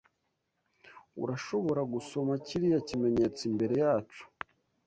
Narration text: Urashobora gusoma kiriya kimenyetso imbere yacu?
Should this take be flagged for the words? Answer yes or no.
no